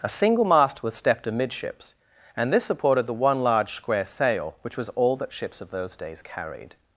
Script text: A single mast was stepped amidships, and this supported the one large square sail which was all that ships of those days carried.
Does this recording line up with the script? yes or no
yes